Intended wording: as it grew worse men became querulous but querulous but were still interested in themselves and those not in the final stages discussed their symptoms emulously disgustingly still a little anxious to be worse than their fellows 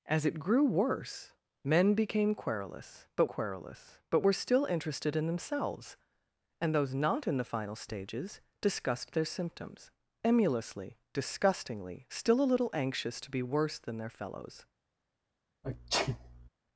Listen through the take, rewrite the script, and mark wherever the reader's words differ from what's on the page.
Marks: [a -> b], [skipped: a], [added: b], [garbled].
as it grew worse men became querulous but querulous but were still interested in themselves and those not in the final stages discussed their symptoms emulously disgustingly still a little anxious to be worse than their fellows